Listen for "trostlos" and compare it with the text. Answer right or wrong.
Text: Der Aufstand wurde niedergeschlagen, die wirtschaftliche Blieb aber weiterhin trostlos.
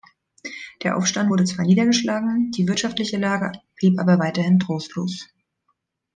right